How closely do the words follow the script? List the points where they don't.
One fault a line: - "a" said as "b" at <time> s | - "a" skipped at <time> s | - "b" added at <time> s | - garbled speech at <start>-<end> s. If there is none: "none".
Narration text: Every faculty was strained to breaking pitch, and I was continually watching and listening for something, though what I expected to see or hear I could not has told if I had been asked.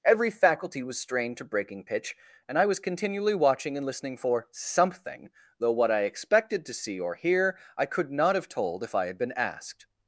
- "has" said as "have" at 8.3 s